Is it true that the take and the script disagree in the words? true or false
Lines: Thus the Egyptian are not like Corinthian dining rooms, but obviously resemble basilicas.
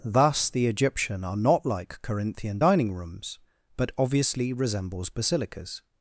true